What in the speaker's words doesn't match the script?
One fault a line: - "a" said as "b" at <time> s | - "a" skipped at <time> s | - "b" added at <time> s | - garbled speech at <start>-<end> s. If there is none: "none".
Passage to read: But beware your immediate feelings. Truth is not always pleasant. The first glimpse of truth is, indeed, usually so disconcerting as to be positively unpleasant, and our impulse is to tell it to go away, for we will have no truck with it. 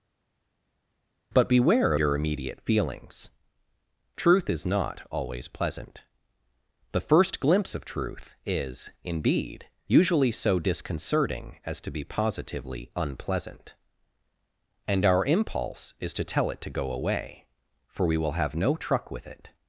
none